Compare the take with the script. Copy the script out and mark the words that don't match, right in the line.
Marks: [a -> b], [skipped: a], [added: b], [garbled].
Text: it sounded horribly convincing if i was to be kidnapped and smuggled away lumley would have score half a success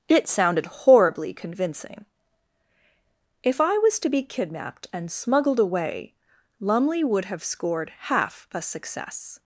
it sounded horribly convincing if i was to be kidnapped and smuggled away lumley would have [score -> scored] half a success